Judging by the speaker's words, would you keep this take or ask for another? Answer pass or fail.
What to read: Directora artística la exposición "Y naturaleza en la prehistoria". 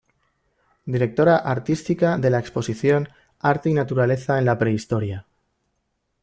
fail